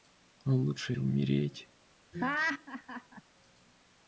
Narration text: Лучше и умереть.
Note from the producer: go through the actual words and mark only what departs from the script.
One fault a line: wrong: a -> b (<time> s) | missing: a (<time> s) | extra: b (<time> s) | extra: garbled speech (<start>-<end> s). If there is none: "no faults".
no faults